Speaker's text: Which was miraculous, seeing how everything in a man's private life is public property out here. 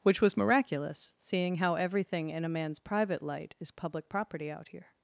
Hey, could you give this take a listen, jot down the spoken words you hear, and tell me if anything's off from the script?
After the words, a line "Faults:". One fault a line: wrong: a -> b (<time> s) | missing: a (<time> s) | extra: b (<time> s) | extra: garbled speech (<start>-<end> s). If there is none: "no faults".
Which was miraculous, seeing how everything in a man's private light is public property out here.
Faults:
wrong: life -> light (3.2 s)